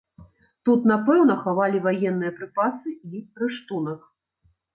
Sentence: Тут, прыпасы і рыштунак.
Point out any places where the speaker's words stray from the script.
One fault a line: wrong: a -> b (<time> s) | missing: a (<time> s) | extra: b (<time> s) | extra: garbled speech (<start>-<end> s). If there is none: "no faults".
extra: напэўна хавалі ваенныя (0.9 s)